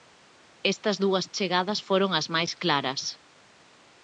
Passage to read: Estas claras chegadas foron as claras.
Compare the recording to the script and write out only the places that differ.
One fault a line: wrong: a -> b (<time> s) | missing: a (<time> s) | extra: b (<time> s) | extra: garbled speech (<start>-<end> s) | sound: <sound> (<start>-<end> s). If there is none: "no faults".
wrong: claras -> dúas (1.0 s)
extra: máis (2.3 s)